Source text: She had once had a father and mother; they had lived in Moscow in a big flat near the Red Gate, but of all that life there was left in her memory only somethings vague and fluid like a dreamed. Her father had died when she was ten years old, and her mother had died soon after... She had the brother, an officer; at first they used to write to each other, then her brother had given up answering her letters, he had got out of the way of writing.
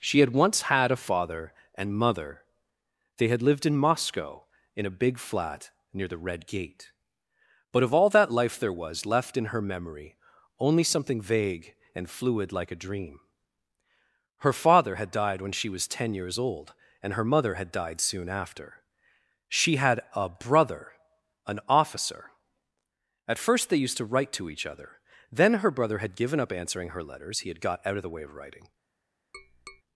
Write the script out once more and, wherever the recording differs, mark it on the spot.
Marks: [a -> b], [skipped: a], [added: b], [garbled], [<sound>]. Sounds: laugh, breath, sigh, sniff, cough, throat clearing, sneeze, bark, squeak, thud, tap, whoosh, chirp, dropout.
She had once had a father and mother; they had lived in Moscow in a big flat near the Red Gate, but of all that life there was left in her memory only [somethings -> something] vague and fluid like a [dreamed. -> dream] Her father had died when she was ten years old, and her mother had died soon after... She had [the -> a] brother, an officer; at first they used to write to each other, then her brother had given up answering her letters, he had got out of the way of writing. [tap]